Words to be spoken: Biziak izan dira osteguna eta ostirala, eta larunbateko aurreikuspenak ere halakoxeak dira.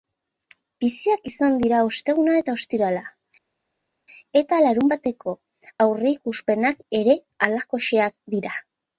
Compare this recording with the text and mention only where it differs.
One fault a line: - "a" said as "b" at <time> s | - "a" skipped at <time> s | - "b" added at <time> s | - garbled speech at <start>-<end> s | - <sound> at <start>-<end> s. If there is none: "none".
none